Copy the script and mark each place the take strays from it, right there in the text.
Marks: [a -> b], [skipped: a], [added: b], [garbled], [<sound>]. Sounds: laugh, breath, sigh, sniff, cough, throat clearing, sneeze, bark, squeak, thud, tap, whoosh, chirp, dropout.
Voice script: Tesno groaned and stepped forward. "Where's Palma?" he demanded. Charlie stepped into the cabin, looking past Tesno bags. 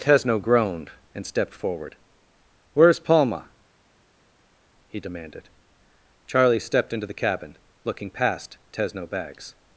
Tesno groaned and stepped forward. "Where's Palma?" he demanded. Charlie stepped into the cabin, looking past Tesno bags.